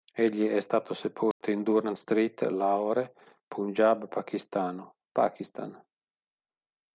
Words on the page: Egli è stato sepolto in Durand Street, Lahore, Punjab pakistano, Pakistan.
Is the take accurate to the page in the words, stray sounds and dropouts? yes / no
no